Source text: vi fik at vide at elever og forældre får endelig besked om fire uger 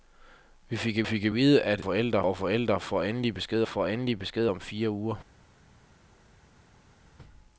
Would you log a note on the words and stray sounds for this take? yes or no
yes